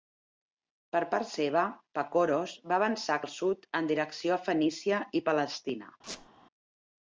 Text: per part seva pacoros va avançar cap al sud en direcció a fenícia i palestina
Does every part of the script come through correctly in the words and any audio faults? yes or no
no